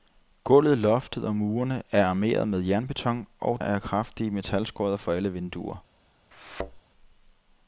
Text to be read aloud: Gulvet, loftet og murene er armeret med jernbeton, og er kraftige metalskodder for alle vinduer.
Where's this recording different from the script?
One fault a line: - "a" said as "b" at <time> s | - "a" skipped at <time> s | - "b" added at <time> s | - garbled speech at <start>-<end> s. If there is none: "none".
none